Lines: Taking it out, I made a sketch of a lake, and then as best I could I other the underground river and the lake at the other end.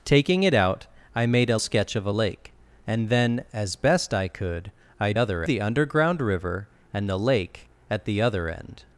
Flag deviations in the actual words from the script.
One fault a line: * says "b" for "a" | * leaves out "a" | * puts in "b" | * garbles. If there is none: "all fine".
all fine